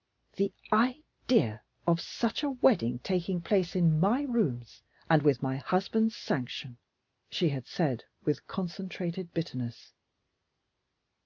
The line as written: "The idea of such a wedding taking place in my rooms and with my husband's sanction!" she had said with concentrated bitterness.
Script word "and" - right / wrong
right